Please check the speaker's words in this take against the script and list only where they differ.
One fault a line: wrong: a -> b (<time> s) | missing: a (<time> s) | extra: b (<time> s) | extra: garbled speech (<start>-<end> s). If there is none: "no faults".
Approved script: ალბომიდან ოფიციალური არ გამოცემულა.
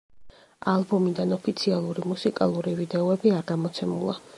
extra: მუსიკალური ვიდეოები (2.1 s)